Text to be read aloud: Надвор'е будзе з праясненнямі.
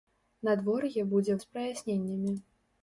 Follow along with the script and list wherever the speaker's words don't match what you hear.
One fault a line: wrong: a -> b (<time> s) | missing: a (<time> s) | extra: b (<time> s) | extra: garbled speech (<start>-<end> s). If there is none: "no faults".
no faults